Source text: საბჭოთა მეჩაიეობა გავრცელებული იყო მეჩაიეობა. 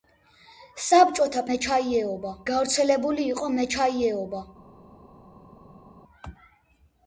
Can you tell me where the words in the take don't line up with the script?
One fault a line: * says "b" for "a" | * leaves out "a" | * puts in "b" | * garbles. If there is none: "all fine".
all fine